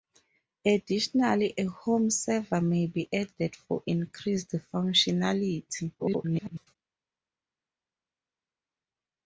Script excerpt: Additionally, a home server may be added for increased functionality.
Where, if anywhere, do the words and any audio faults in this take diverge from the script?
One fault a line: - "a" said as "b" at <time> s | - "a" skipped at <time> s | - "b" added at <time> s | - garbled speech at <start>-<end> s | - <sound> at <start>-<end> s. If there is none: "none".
- garbled speech at 6.0-6.8 s